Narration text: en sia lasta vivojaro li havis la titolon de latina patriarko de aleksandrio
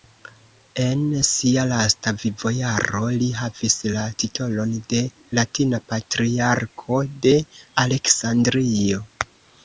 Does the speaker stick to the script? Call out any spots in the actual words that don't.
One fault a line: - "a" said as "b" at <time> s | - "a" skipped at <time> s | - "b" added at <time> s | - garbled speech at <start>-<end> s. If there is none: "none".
none